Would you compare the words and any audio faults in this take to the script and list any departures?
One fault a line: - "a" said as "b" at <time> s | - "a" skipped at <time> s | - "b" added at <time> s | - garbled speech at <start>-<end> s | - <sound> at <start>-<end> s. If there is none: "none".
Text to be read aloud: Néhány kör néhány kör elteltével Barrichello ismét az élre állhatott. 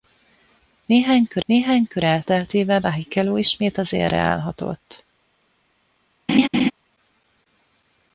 - laugh at 6.3-6.7 s